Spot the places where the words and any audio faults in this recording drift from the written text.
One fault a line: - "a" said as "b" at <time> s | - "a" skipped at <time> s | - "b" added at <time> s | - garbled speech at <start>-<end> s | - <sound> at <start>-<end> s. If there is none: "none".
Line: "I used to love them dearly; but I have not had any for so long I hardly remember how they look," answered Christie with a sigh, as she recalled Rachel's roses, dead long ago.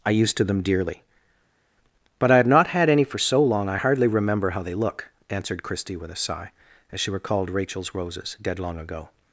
- "love" skipped at 0.4 s